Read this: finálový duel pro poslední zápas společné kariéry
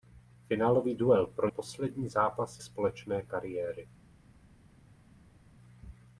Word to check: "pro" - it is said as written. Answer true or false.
true